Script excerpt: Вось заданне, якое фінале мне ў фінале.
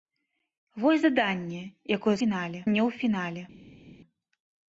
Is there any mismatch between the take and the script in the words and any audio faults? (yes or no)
no